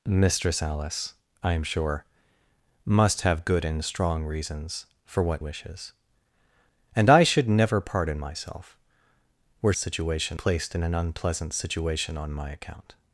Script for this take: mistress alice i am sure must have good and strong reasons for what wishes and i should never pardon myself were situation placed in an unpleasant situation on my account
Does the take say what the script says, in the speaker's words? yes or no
yes